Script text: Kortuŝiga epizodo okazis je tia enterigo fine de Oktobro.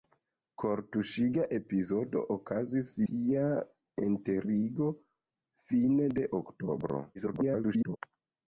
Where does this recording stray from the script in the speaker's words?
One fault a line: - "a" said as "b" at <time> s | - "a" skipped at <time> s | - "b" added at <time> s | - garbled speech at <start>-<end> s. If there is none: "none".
- "je" skipped at 2.9 s
- garbled speech at 7.1-8.0 s